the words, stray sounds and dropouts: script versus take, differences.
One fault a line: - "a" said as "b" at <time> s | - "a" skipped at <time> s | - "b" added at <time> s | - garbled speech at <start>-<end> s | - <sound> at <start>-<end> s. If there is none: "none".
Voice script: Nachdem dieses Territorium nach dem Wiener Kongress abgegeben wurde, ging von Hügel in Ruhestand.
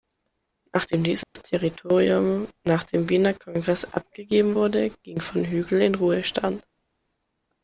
- dropout at 1.2-1.4 s